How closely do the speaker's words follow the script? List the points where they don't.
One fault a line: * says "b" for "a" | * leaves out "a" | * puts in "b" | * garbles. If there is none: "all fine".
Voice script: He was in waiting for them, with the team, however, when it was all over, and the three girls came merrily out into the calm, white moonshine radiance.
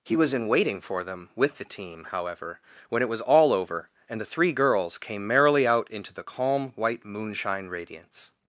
all fine